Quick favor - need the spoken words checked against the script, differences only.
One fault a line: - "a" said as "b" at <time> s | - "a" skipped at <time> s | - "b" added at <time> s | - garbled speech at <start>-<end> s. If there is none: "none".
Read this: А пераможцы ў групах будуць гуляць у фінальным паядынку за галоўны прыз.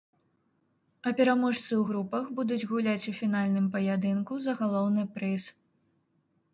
none